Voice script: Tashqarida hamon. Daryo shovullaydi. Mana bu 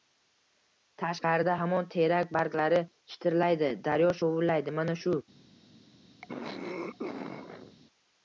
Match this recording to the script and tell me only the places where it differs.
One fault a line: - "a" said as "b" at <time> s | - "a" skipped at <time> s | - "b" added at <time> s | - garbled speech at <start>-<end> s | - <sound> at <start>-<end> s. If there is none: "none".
- "terak barglari shitirlaydi" added at 2.0 s
- "bu" said as "shu" at 5.0 s
- throat clearing at 6.2-7.8 s